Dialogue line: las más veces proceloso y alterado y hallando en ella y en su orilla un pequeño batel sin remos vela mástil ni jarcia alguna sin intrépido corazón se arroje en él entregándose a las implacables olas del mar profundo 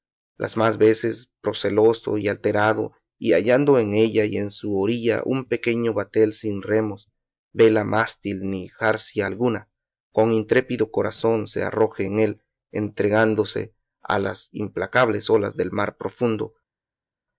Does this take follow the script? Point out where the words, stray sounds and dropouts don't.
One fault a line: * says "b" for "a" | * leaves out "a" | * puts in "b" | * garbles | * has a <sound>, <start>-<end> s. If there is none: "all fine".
* says "con" for "sin"